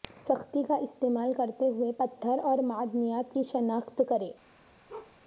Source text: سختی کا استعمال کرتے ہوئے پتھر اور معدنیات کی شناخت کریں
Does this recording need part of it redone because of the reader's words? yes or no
no